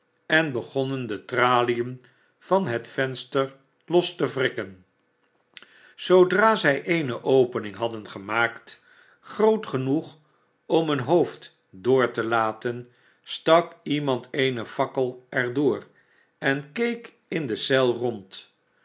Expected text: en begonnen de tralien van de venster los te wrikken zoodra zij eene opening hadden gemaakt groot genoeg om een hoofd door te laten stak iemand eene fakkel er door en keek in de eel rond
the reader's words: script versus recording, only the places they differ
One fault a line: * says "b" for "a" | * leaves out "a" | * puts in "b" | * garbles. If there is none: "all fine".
* says "het" for "de"